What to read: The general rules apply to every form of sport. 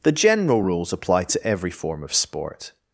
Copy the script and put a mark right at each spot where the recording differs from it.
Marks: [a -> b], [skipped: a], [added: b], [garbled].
The general rules apply to every form of sport.